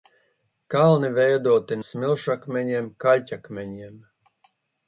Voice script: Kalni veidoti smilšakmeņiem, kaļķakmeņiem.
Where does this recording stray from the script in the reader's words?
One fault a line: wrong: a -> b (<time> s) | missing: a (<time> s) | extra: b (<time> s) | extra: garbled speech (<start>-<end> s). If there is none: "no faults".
no faults